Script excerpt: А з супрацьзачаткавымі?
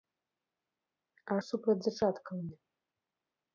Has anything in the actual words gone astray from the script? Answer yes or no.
no